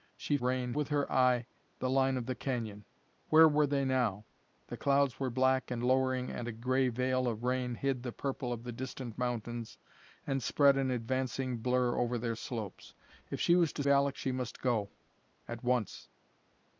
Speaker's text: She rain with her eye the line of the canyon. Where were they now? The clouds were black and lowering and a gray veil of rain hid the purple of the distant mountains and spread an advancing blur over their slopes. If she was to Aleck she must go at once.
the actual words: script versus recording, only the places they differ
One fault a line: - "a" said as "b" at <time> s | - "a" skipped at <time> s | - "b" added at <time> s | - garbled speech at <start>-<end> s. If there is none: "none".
none